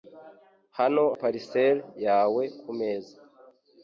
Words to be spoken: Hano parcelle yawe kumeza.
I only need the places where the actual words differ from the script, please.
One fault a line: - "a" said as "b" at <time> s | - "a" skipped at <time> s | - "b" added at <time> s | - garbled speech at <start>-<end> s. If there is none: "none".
none